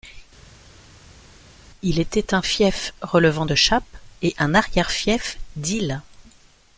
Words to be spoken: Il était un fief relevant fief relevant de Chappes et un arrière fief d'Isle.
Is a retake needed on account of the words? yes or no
yes